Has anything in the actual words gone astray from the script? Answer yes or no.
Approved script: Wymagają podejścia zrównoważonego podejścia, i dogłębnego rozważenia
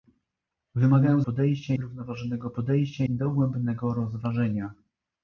no